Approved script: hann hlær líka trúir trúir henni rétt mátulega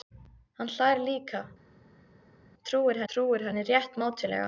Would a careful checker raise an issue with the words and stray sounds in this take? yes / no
no